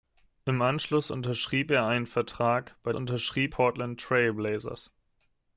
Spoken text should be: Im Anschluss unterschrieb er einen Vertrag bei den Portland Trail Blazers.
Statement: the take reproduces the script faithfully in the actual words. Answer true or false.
false